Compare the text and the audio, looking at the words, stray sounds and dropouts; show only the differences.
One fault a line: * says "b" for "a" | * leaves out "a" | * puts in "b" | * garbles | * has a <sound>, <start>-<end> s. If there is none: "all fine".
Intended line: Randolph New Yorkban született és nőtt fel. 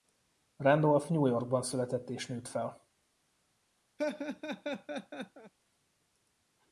* has a laugh, 4.0-5.5 s